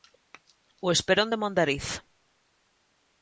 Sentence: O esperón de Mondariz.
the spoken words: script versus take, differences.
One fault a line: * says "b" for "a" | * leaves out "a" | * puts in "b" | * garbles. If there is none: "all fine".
all fine